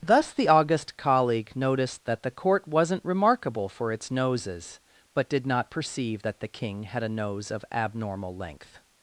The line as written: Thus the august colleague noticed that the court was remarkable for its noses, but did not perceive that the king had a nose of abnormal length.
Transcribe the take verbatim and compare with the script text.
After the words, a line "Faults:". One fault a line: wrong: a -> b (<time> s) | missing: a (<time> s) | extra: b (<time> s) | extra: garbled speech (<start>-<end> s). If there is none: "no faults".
Thus the august colleague noticed that the court wasn't remarkable for its noses, but did not perceive that the king had a nose of abnormal length.
Faults:
wrong: was -> wasn't (2.7 s)